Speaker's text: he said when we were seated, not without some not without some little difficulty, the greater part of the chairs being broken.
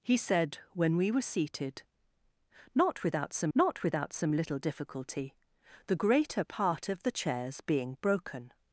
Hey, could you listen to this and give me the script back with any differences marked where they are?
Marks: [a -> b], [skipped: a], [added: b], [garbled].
he said when we were seated, not without some not without some little difficulty, the greater part of the chairs being broken.